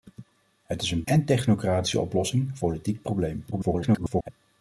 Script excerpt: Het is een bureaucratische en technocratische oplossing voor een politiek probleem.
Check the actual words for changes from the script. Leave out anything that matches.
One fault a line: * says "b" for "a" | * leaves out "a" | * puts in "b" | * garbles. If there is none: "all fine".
* leaves out "bureaucratische"
* leaves out "voor een"
* garbles